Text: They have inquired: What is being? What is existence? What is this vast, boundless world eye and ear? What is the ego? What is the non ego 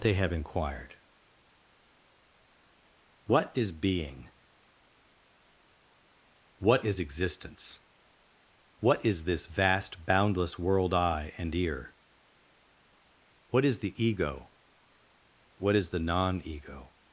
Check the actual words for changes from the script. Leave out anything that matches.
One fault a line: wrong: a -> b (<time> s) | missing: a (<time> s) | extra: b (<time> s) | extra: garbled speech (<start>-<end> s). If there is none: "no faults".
no faults